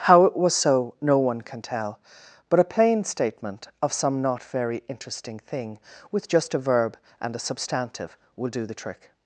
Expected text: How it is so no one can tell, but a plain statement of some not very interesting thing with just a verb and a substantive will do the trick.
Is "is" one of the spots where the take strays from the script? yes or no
yes